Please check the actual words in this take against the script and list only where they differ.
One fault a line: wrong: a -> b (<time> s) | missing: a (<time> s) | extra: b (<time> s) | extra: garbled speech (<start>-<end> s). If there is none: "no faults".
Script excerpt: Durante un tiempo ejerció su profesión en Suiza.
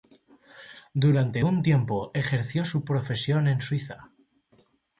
no faults